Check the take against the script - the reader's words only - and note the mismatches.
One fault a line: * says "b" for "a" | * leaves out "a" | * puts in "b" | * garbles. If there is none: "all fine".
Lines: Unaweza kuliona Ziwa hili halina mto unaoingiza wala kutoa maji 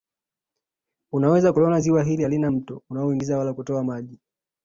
all fine